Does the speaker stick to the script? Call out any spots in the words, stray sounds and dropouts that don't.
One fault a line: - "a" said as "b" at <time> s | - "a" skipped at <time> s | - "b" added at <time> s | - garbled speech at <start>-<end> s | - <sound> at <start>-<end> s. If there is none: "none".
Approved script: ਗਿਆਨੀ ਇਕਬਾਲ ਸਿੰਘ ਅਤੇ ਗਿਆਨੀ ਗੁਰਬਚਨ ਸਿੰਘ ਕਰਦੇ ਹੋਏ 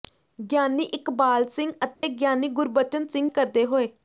- dropout at 2.0-2.0 s